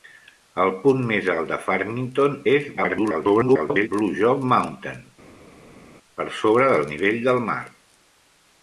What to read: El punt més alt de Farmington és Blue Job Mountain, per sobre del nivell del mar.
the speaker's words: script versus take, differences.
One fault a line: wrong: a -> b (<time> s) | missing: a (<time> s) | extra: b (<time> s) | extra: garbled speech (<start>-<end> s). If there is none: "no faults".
extra: garbled speech (2.8-3.9 s)